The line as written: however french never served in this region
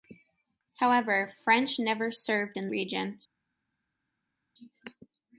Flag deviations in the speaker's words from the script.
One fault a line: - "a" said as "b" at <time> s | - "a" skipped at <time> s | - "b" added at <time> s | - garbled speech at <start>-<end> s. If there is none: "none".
- "this" skipped at 2.7 s